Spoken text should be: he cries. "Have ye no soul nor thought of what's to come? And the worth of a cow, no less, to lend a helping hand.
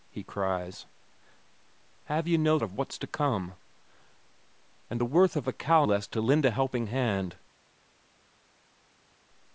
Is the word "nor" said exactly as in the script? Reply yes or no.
no